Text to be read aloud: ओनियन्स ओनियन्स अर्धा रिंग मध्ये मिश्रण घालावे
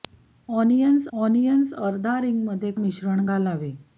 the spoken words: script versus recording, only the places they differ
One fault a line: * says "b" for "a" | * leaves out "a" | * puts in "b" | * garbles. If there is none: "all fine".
all fine